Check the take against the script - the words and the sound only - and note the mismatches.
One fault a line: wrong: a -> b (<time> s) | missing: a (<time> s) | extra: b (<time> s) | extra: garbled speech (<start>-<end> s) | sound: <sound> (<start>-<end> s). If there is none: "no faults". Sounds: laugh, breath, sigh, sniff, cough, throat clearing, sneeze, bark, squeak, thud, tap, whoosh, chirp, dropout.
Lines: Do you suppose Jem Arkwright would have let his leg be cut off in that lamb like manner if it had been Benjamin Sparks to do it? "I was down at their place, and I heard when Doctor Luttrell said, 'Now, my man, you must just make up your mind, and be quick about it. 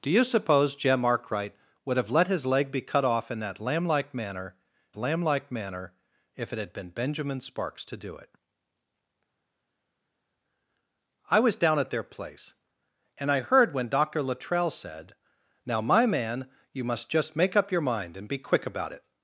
extra: lamb like manner (5.0 s)